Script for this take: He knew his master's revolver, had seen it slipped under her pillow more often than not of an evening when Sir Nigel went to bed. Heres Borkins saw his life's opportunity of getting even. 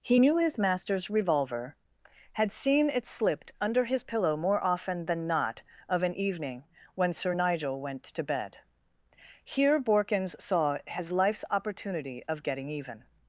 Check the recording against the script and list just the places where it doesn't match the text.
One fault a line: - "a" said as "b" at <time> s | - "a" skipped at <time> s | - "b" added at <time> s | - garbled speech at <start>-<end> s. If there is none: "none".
- "her" said as "his" at 3.8 s
- "Heres" said as "Here" at 9.4 s